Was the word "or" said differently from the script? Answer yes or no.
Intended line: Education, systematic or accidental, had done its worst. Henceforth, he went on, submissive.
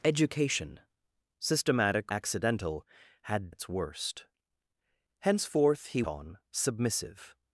yes